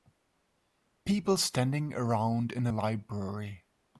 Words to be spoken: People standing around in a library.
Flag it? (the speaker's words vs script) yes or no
no